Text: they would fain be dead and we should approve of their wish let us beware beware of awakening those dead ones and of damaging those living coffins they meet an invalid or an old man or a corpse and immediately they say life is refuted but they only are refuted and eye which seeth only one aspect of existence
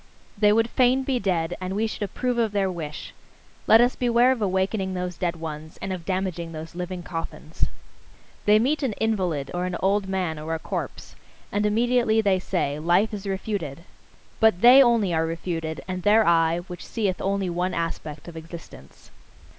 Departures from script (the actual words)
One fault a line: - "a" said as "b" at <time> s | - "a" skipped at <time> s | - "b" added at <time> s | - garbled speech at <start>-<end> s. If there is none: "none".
- "beware" skipped at 4.3 s
- "their" added at 16.0 s